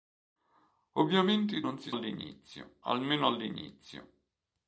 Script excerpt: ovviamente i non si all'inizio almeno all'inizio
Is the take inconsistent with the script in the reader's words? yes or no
no